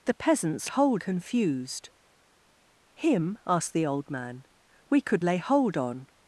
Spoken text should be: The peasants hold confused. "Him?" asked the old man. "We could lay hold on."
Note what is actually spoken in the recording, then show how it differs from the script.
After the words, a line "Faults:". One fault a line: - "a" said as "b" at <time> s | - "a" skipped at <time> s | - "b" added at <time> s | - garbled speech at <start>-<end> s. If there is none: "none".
The peasants hold confused. "Him?" asked the old man. "We could lay hold on."
Faults:
none